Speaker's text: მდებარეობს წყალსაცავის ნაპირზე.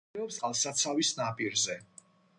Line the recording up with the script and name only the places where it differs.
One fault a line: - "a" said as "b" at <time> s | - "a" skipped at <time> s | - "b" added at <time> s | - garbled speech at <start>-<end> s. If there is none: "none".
none